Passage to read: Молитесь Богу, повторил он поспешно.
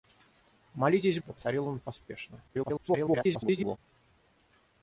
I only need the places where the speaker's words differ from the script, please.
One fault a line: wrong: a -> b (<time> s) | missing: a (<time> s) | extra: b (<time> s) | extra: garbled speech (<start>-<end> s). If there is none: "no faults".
missing: Богу (1.2 s)
extra: garbled speech (2.5-3.8 s)